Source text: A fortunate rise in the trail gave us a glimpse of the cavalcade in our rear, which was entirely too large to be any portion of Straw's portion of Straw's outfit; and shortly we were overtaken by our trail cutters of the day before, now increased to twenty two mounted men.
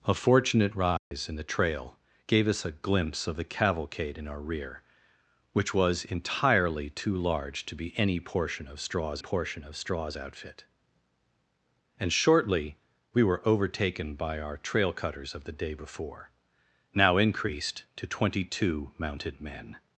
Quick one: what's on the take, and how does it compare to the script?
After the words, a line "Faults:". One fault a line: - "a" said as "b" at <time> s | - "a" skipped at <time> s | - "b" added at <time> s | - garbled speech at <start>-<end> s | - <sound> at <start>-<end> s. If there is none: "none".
A fortunate rise in the trail gave us a glimpse of the cavalcade in our rear, which was entirely too large to be any portion of Straw's portion of Straw's outfit; and shortly we were overtaken by our trail cutters of the day before, now increased to twenty two mounted men.
Faults:
- dropout at 1.0-1.1 s